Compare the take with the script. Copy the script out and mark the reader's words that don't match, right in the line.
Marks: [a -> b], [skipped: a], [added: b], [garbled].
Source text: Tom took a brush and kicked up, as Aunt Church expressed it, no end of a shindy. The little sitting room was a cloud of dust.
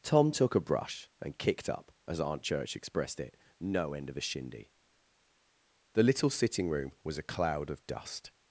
Tom took a brush and kicked up, as Aunt Church expressed it, no end of a shindy. The little sitting room was a cloud of dust.